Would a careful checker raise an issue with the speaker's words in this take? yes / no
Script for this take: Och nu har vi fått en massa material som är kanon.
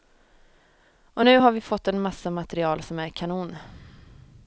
no